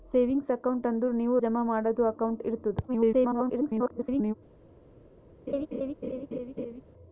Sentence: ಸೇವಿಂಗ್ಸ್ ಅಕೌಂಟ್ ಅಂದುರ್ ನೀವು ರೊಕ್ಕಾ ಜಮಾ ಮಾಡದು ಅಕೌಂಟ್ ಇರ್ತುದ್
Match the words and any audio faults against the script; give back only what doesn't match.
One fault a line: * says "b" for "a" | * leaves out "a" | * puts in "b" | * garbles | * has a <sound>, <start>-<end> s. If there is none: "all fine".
* leaves out "ರೊಕ್ಕಾ"
* garbles
* has a laugh, 5.5-6.8 s